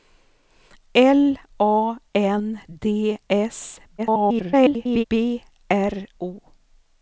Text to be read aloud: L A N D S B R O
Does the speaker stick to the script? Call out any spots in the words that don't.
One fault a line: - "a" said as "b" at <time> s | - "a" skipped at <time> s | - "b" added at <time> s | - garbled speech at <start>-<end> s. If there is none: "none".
- garbled speech at 4.0-5.0 s